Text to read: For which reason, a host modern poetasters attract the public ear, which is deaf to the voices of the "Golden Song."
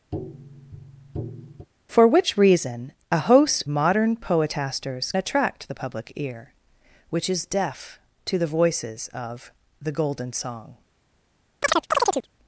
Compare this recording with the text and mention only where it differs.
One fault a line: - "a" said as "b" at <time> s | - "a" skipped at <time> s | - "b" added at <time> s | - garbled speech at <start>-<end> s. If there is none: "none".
none